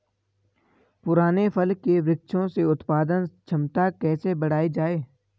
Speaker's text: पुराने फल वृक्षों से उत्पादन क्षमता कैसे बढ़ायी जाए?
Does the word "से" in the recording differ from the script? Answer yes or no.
no